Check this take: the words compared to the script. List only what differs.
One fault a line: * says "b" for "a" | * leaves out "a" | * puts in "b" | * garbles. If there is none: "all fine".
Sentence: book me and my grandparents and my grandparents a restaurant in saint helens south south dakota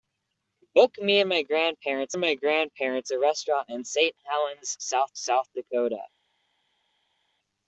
all fine